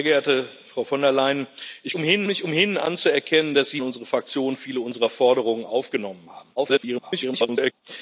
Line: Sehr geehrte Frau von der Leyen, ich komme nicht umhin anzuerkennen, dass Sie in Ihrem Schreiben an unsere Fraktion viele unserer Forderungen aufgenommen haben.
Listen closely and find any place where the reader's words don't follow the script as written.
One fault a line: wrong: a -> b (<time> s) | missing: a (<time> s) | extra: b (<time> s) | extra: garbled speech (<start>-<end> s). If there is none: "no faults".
wrong: komme -> umhin (1.9 s)
missing: in Ihrem Schreiben (3.8 s)
extra: garbled speech (6.6-7.7 s)